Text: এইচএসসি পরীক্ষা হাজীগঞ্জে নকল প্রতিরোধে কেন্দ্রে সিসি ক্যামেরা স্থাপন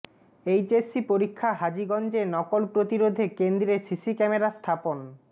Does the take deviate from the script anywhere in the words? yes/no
no